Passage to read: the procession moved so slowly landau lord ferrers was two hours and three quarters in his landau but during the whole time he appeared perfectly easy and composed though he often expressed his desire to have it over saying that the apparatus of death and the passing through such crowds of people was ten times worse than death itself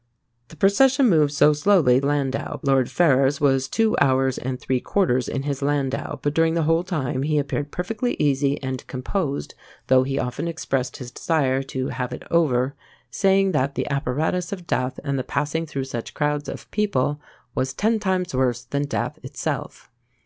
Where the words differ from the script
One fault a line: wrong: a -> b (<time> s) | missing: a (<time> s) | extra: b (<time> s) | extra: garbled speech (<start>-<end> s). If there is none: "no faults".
no faults